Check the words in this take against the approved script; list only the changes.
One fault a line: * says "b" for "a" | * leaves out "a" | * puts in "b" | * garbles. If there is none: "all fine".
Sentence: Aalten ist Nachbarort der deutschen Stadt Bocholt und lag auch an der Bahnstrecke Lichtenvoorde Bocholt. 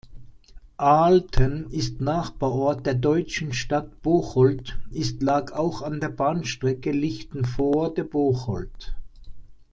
* says "ist" for "und"